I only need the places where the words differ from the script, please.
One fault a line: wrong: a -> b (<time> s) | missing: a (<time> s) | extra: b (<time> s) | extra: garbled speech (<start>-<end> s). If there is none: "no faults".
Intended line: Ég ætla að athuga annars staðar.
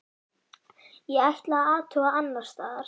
no faults